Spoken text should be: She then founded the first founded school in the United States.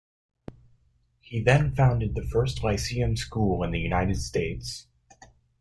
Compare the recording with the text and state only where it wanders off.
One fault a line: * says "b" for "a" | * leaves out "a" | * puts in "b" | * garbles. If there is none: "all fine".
* says "He" for "She"
* says "lyceum" for "founded"